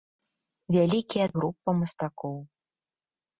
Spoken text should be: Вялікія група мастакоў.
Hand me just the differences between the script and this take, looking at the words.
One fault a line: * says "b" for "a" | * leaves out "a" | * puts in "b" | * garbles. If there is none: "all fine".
all fine